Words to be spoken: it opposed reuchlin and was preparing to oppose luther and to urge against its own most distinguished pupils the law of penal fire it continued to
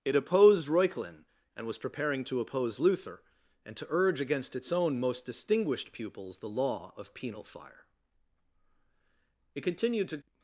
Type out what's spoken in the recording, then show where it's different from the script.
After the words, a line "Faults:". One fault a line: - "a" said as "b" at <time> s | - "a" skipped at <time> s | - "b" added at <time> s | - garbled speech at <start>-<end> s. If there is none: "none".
it opposed reuchlin and was preparing to oppose luther and to urge against its own most distinguished pupils the law of penal fire it continued to
Faults:
none